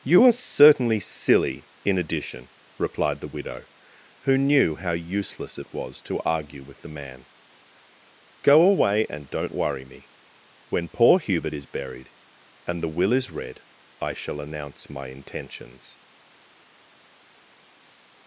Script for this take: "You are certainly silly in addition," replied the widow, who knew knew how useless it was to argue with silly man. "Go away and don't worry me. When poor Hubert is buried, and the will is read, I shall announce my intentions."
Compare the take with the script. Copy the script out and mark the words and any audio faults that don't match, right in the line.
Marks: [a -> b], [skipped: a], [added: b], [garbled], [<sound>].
"You are certainly silly in addition," replied the widow, who knew [skipped: knew] how useless it was to argue with [silly -> the] man. "Go away and don't worry me. When poor Hubert is buried, and the will is read, I shall announce my intentions."